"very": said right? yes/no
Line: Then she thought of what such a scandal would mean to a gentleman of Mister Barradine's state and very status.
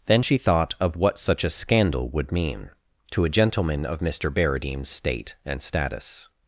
no